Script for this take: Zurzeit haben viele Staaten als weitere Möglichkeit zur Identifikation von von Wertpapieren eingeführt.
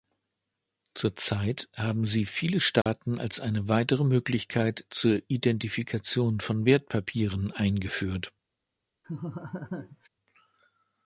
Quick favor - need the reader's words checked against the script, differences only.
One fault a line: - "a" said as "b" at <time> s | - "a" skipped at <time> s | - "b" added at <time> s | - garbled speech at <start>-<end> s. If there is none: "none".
- "sie" added at 2.0 s
- "eine" added at 3.4 s
- "von" skipped at 6.6 s